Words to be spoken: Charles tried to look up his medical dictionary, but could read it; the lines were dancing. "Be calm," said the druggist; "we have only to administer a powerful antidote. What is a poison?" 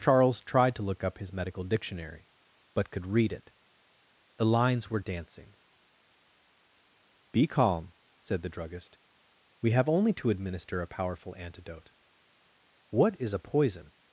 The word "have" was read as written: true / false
true